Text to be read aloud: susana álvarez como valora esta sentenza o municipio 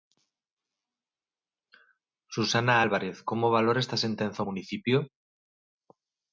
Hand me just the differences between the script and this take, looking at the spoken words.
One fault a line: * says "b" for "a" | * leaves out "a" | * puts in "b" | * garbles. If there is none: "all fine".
all fine